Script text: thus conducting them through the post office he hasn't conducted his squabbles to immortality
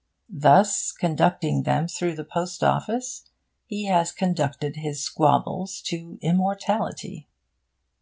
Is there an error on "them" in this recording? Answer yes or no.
no